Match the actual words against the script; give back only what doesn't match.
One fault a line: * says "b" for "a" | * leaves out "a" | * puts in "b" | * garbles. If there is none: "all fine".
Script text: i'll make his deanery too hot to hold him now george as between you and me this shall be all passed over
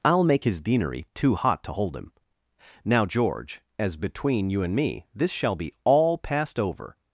all fine